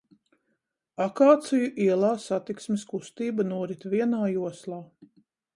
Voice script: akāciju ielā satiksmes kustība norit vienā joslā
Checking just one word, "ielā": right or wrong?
right